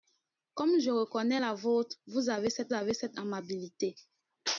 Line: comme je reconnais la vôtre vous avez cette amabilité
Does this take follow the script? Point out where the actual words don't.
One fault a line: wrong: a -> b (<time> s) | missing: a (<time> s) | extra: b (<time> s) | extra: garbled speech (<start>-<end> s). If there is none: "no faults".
extra: avez cette (2.7 s)